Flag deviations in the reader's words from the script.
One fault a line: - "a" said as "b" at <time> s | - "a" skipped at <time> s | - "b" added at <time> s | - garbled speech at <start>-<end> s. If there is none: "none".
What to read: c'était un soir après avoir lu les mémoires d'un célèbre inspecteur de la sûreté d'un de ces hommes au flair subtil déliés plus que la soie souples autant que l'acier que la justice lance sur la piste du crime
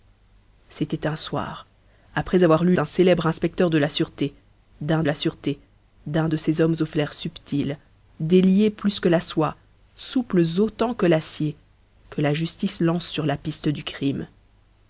- "les mémoires" skipped at 2.8 s
- "la sûreté d'un" added at 5.0 s